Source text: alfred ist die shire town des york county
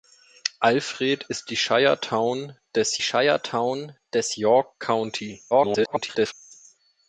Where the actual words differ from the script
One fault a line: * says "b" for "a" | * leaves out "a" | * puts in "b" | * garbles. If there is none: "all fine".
* puts in "shire town des"
* garbles